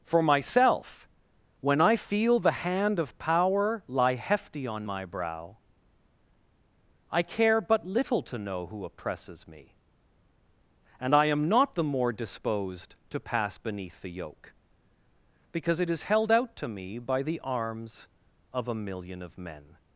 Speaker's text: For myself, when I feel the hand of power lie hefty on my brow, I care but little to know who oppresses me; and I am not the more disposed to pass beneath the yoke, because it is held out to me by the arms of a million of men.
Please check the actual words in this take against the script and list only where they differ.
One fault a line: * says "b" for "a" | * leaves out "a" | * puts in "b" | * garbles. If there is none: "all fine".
all fine